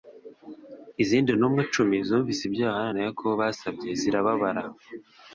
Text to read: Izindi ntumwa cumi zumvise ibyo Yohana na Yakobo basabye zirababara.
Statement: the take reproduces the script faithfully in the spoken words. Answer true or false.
true